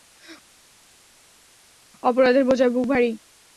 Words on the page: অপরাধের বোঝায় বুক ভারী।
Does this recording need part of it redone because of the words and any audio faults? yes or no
no